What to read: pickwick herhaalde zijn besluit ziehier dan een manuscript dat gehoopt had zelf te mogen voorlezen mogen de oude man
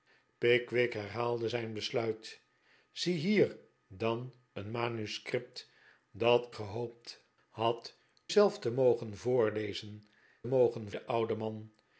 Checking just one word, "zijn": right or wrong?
right